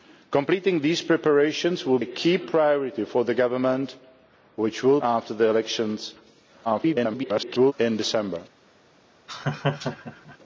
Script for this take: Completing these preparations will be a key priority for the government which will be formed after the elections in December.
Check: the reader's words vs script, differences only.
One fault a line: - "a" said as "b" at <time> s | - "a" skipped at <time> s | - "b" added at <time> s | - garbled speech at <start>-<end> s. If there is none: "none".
- "be" skipped at 2.0 s
- "be formed" skipped at 5.0 s
- garbled speech at 6.6-7.7 s